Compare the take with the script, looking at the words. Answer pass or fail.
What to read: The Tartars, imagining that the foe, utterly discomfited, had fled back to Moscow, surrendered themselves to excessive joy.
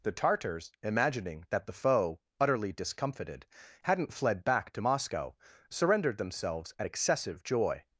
fail